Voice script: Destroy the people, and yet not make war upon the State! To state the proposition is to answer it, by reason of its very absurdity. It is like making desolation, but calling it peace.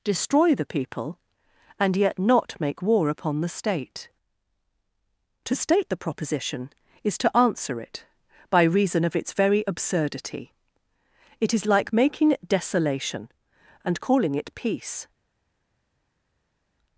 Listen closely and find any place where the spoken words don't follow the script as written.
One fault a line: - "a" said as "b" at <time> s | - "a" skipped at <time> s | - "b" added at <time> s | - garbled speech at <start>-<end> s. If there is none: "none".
- "but" said as "and" at 13.8 s